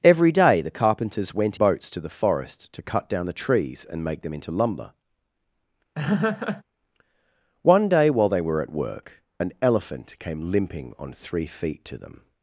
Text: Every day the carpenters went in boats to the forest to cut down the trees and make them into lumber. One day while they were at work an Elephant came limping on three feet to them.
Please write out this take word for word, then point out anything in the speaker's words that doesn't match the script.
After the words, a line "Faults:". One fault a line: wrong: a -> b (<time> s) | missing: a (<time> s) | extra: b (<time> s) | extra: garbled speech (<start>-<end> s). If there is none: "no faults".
Every day the carpenters went boats to the forest to cut down the trees and make them into lumber. One day while they were at work an Elephant came limping on three feet to them.
Faults:
missing: in (1.6 s)